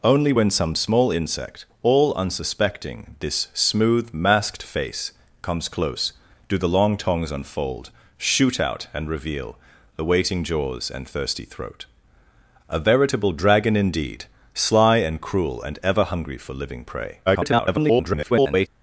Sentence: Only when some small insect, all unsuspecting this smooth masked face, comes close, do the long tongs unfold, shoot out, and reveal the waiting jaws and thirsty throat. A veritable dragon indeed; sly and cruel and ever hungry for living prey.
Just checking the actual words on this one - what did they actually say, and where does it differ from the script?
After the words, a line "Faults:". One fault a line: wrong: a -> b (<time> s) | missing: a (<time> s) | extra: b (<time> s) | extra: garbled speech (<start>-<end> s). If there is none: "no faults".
Only when some small insect, all unsuspecting this smooth masked face, comes close, do the long tongs unfold, shoot out, and reveal the waiting jaws and thirsty throat. A veritable dragon indeed; sly and cruel and ever hungry for living prey. [garbled]
Faults:
extra: garbled speech (17.3-18.7 s)